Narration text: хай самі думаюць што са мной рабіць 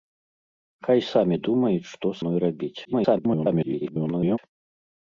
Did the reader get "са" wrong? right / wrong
wrong